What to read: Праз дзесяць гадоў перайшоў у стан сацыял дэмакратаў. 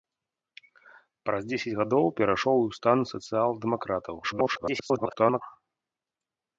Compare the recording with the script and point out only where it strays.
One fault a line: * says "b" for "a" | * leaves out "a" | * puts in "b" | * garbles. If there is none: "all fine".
* garbles